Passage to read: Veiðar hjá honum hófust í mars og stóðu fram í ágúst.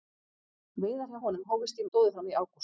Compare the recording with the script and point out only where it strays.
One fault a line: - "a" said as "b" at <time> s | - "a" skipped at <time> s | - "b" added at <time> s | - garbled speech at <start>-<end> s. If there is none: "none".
- "mars og" skipped at 1.9 s